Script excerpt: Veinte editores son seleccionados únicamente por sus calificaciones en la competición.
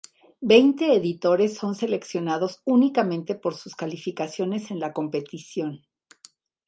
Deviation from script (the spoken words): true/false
false